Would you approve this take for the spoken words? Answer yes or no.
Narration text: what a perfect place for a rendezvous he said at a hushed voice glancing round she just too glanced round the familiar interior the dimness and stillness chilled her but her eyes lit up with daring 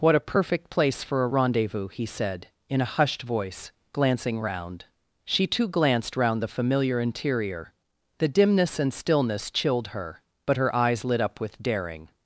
no